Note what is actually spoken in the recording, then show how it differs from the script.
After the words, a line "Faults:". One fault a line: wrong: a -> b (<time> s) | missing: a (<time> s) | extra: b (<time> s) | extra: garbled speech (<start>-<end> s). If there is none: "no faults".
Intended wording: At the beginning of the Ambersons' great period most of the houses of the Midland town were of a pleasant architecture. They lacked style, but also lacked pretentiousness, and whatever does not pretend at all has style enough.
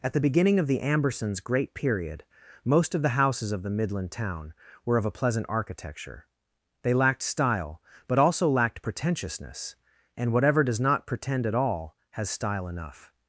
At the beginning of the Ambersons' great period most of the houses of the Midland town were of a pleasant architecture. They lacked style, but also lacked pretentiousness, and whatever does not pretend at all has style enough.
Faults:
no faults